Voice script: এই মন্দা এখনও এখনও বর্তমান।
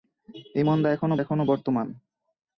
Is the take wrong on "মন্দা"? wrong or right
right